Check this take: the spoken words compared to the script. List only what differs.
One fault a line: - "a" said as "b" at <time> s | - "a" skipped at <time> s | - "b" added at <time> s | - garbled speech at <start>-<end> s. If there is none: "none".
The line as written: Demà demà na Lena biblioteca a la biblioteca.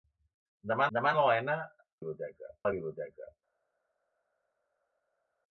none